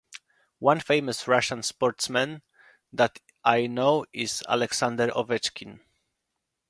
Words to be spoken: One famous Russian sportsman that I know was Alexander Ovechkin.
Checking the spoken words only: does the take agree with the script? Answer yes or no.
no